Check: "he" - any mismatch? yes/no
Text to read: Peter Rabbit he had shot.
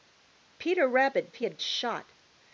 no